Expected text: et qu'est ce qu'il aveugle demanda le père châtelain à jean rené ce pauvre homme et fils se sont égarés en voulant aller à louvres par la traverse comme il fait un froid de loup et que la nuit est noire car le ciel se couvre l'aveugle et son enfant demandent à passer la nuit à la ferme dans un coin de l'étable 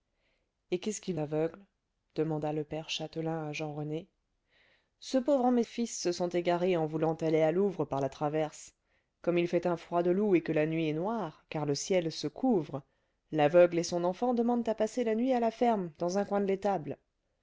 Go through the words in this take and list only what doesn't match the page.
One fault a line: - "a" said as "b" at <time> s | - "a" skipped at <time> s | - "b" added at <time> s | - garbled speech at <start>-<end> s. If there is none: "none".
none